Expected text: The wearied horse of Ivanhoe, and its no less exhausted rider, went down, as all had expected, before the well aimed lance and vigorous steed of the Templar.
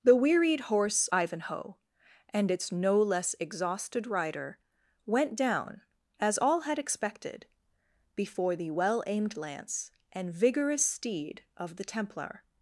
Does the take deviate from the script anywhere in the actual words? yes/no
yes